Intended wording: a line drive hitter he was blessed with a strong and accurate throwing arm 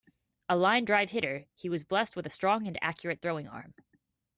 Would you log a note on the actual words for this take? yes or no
no